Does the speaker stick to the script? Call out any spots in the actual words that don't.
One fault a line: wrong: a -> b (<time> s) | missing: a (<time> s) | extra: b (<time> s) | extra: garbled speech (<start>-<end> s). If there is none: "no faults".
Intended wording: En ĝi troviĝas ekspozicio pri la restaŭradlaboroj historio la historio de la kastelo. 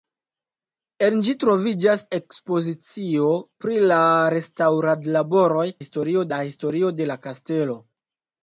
no faults